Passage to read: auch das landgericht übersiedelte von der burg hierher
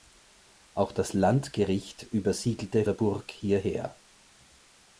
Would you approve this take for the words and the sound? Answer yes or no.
no